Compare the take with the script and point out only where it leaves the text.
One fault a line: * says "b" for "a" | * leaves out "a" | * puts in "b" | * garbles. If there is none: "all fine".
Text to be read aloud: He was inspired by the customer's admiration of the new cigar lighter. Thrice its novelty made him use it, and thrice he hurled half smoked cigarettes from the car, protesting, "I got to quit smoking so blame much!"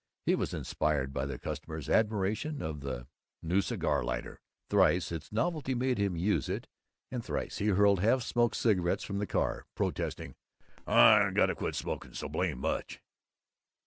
all fine